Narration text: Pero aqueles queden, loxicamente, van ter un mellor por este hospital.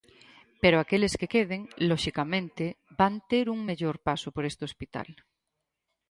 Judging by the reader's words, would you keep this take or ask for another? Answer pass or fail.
fail